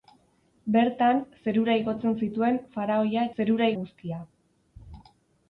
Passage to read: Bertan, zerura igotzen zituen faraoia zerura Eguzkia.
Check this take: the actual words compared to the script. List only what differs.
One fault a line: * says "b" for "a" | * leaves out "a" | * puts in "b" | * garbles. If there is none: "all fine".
all fine